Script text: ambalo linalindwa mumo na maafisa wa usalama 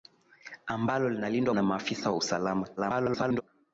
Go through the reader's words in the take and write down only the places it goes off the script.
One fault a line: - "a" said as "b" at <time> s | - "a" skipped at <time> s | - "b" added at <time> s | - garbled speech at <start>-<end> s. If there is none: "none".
- "mumo" skipped at 1.6 s
- garbled speech at 2.8-3.4 s